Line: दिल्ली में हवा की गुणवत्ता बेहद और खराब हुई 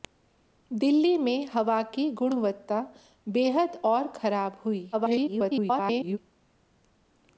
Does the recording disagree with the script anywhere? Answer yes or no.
yes